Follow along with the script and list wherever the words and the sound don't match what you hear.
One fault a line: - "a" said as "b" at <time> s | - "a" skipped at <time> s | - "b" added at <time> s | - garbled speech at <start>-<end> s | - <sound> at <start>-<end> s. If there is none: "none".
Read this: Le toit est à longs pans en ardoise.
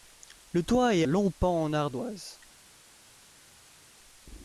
- "à" skipped at 1.1 s